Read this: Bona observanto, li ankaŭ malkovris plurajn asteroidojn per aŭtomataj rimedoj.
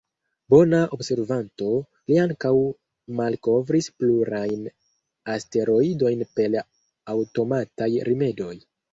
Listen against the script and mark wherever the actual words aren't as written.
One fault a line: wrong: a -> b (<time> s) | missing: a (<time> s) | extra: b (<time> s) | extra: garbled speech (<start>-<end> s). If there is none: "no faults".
no faults